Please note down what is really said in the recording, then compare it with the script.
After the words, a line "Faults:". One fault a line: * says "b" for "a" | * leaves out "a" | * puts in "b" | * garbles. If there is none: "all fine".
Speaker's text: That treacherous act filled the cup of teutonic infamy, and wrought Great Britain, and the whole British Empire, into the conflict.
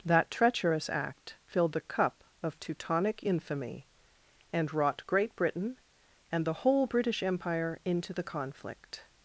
That treacherous act filled the cup of teutonic infamy, and wrought Great Britain, and the whole British Empire, into the conflict.
Faults:
all fine